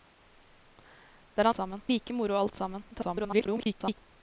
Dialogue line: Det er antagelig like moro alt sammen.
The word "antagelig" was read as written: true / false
false